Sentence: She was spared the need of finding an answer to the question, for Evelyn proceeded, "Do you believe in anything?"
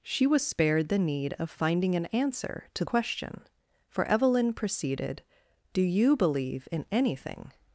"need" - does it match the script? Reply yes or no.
yes